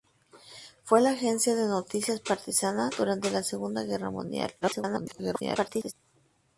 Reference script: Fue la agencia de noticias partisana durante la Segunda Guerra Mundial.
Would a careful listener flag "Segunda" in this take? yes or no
no